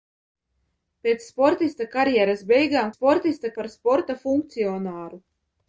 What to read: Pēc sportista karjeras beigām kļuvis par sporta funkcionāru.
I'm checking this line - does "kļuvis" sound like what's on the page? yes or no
no